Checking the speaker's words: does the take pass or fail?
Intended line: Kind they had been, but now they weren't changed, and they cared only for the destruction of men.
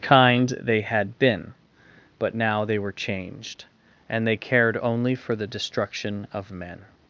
fail